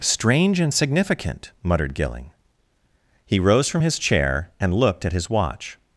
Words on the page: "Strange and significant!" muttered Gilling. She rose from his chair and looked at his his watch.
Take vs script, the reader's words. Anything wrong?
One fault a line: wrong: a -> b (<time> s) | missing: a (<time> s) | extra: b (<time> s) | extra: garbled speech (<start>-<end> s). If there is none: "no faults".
wrong: She -> He (3.3 s)
missing: his (5.3 s)